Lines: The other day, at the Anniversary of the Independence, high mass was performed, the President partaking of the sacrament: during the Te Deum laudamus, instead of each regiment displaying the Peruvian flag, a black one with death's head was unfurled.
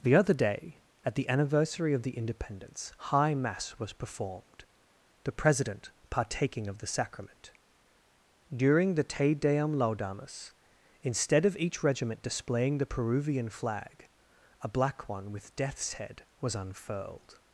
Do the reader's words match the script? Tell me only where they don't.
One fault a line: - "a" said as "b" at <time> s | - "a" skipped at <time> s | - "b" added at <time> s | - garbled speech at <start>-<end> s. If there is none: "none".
none